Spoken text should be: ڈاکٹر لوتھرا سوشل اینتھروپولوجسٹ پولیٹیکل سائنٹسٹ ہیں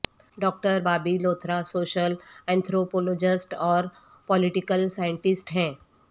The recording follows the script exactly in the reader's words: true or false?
false